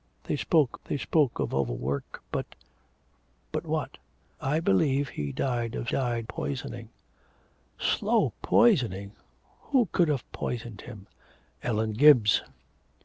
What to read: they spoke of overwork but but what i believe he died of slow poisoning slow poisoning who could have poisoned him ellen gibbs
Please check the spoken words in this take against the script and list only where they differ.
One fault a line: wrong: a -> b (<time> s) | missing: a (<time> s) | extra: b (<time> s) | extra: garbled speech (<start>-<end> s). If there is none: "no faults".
extra: they spoke (0.8 s)
wrong: slow -> died (5.9 s)